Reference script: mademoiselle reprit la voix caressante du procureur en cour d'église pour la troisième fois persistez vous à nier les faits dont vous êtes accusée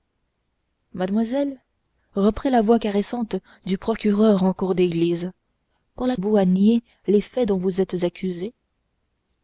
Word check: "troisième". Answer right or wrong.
wrong